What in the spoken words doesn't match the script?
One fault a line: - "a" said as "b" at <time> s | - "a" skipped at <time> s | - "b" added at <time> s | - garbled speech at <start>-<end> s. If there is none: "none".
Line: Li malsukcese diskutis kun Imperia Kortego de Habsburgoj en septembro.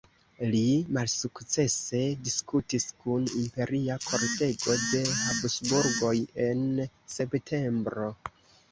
none